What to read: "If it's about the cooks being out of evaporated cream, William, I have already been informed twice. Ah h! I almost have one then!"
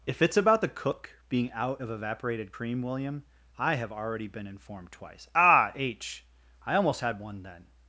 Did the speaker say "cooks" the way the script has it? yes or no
no